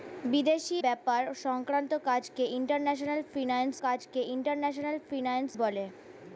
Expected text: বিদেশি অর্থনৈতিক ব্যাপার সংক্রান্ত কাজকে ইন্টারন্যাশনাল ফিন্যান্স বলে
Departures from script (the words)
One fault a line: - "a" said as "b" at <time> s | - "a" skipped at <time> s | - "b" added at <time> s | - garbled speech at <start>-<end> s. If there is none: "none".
- "অর্থনৈতিক" skipped at 0.8 s
- "কাজকে ইন্টারন্যাশনাল ফিন্যান্স" added at 3.9 s